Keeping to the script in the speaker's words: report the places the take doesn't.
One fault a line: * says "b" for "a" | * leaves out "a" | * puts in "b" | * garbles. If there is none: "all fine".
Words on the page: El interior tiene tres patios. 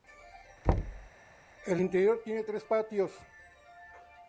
all fine